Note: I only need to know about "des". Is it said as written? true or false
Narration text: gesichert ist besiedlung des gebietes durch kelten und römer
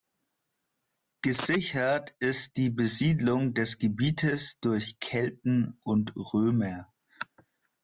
true